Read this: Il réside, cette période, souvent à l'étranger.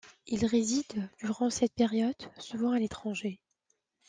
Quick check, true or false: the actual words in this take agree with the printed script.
false